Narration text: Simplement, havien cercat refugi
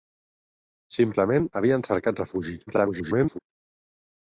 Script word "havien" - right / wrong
right